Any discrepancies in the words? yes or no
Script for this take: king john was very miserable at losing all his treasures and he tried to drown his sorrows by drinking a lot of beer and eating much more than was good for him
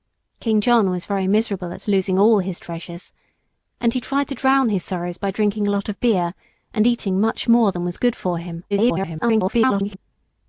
yes